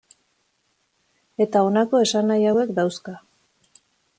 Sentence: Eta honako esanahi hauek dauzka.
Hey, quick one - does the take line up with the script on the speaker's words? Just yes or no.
yes